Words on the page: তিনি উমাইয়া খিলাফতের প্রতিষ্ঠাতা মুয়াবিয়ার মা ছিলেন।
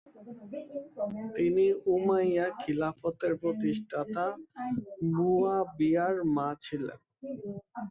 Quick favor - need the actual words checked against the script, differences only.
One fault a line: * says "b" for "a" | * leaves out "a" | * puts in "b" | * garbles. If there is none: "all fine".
all fine